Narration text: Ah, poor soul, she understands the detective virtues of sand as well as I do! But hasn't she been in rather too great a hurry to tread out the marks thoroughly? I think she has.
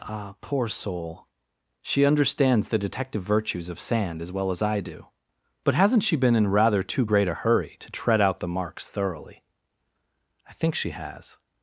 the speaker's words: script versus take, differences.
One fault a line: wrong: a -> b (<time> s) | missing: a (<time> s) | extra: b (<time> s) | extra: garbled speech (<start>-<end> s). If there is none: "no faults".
no faults